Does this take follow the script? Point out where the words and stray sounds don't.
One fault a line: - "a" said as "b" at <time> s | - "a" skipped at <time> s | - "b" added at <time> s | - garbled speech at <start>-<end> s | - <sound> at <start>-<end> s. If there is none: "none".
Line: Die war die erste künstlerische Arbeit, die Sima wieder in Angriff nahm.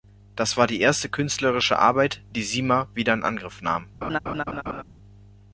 - "Die" said as "Das" at 0.3 s
- laugh at 4.0-4.8 s